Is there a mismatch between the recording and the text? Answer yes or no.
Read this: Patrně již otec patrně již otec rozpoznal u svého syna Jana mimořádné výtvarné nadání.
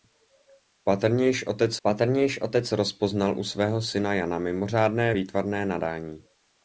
no